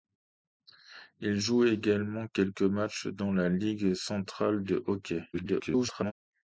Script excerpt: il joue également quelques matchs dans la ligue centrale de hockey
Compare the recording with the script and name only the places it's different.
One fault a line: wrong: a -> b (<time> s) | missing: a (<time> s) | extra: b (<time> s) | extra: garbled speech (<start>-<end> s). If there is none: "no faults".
extra: garbled speech (5.3-6.1 s)